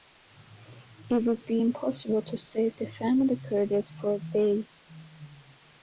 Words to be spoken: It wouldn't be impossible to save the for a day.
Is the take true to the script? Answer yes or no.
no